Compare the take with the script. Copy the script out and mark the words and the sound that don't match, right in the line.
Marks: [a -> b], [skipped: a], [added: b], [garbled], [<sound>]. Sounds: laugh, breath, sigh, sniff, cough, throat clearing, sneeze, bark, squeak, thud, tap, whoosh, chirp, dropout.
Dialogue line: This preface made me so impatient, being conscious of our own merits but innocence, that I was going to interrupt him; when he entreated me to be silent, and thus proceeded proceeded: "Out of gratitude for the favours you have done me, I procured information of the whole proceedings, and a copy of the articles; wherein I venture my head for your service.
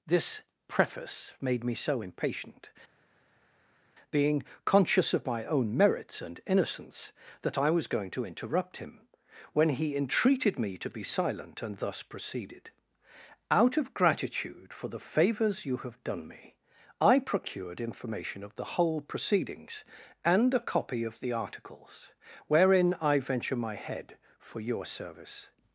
This preface made me so impatient, being conscious of [our -> my] own merits [but -> and] innocence, that I was going to interrupt him; when he entreated me to be silent, and thus proceeded [skipped: proceeded:] "Out of gratitude for the favours you have done me, I procured information of the whole proceedings, and a copy of the articles; wherein I venture my head for your service.